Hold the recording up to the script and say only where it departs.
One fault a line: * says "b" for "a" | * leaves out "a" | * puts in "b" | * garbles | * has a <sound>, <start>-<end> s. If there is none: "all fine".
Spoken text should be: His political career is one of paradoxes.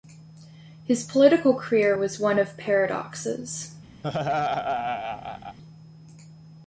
* says "was" for "is"
* has a laugh, 4.0-5.6 s